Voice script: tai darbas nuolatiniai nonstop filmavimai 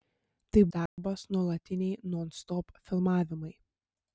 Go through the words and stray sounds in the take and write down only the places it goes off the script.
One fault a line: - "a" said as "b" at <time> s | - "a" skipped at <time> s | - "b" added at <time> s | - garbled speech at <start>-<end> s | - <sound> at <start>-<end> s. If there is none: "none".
- dropout at 0.9-1.0 s